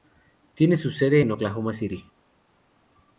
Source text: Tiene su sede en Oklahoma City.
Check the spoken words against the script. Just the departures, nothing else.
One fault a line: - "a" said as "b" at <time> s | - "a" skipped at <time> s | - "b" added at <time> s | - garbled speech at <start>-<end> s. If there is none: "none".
none